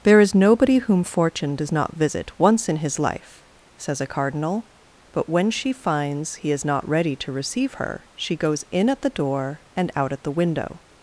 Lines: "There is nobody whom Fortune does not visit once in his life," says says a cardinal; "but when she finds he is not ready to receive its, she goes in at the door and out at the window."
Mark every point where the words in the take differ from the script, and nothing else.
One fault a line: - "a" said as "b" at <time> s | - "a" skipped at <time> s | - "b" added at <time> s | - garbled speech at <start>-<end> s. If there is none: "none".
- "says" skipped at 4.0 s
- "its" said as "her" at 7.8 s